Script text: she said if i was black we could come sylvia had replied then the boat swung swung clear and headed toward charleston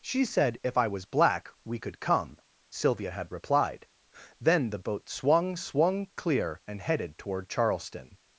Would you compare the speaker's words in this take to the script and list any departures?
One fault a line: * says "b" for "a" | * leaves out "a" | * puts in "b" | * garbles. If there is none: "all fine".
all fine